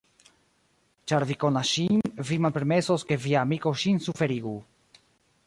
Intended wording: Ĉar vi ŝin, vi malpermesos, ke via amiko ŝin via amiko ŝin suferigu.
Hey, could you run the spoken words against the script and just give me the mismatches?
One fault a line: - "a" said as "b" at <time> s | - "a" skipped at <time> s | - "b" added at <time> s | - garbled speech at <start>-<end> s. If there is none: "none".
- "konas" added at 1.4 s
- "via amiko ŝin" skipped at 4.0 s